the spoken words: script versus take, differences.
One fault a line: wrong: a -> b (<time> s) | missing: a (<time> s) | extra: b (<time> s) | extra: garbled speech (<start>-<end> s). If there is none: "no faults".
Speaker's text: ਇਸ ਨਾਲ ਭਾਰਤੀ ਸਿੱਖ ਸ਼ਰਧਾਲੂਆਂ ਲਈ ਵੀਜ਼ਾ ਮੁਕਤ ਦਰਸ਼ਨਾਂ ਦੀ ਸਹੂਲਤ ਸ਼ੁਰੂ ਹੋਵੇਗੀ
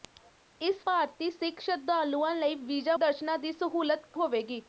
missing: ਨਾਲ (0.8 s)
missing: ਮੁਕਤ (3.0 s)
missing: ਸ਼ੁਰੂ (4.2 s)